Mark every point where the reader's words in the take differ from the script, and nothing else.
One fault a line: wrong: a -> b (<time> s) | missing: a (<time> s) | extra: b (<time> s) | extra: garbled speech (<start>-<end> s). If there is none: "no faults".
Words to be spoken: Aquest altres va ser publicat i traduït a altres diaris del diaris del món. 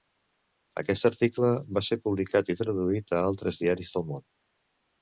wrong: altres -> article (1.1 s)
missing: diaris del (4.1 s)